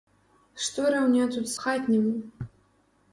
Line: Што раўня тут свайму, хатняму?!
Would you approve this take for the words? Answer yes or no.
no